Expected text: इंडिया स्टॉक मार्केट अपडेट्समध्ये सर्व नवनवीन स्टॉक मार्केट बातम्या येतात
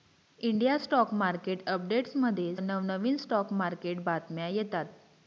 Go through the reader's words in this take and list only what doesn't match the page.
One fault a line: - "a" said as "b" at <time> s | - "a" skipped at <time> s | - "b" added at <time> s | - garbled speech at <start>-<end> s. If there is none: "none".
- "सर्व" skipped at 2.5 s